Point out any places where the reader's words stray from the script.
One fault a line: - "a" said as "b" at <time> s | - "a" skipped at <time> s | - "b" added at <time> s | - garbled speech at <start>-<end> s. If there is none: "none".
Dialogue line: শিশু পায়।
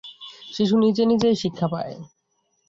- "নিজে নিজেই শিক্ষা" added at 0.8 s